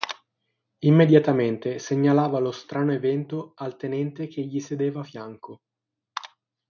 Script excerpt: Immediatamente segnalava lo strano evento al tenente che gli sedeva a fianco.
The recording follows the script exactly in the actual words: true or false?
true